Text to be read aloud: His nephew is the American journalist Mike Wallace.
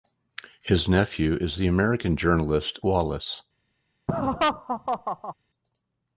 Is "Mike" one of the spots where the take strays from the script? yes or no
yes